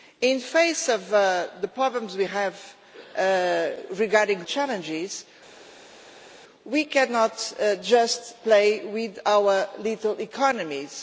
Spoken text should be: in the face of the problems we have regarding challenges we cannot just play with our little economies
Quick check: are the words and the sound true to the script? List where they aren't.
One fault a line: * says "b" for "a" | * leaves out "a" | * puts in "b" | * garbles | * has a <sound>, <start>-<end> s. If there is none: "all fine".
all fine